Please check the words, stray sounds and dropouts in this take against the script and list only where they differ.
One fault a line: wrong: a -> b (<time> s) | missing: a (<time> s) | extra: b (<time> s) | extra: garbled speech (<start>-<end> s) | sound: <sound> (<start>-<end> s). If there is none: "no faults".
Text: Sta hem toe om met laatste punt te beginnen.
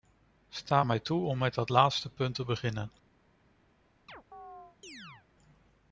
wrong: hem -> mij (0.8 s)
extra: dat (1.5 s)
sound: chirp (4.1-5.3 s)